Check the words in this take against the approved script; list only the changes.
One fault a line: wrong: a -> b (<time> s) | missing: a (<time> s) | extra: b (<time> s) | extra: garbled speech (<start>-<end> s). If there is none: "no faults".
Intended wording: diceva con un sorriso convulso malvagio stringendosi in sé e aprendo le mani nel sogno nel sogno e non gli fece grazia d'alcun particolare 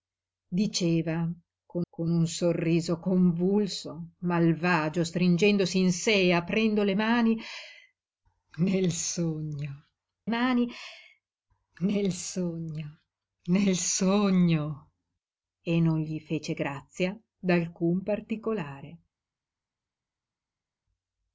extra: con (1.9 s)
extra: mani nel sogno (10.3 s)